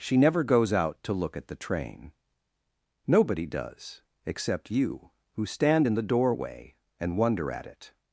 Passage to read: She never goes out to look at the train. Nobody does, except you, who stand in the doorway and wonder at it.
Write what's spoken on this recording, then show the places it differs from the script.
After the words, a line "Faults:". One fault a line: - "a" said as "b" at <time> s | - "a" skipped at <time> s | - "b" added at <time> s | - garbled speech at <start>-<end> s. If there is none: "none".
She never goes out to look at the train. Nobody does, except you, who stand in the doorway and wonder at it.
Faults:
none